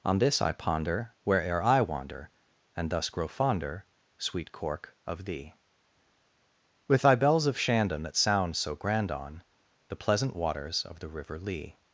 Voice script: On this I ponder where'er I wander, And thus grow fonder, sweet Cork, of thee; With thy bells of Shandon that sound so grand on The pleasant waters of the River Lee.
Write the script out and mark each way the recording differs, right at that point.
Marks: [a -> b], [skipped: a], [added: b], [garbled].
On this I ponder where'er I wander, And thus grow fonder, sweet Cork, of thee; With thy bells of Shandon that sound so grand on The pleasant waters of the River Lee.